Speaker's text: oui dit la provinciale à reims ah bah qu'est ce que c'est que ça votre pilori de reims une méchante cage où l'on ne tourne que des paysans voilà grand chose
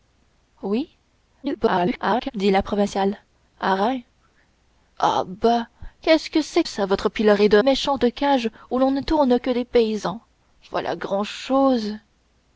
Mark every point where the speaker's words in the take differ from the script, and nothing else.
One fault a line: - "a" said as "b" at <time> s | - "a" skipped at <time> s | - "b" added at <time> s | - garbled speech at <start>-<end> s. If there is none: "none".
- garbled speech at 1.4-2.3 s
- "que" skipped at 6.6 s
- "reims une" skipped at 7.6 s